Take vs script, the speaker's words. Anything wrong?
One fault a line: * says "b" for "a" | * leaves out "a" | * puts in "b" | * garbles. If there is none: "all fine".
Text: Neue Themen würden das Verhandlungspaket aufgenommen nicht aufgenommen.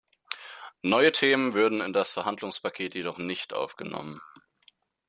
* puts in "in"
* says "jedoch" for "aufgenommen"